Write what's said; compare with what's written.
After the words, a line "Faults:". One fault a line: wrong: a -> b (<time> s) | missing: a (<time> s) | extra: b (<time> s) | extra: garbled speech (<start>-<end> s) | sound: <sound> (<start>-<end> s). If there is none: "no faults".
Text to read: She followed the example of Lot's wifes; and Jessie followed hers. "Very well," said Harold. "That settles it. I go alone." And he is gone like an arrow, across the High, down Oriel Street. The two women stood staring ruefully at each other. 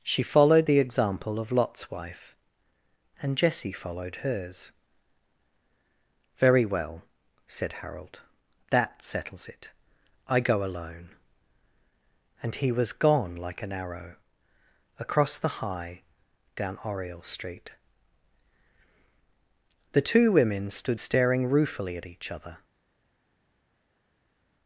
She followed the example of Lot's wife; and Jessie followed hers. "Very well," said Harold. "That settles it. I go alone." And he was gone like an arrow, across the High, down Oriel Street. The two women stood staring ruefully at each other.
Faults:
wrong: wifes -> wife (1.9 s)
wrong: is -> was (12.7 s)